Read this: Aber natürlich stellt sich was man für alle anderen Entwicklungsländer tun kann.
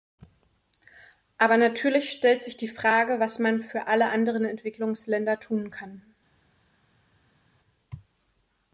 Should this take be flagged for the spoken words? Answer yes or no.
yes